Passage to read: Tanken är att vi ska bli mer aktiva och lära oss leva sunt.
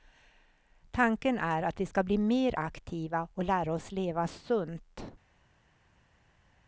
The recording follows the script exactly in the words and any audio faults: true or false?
true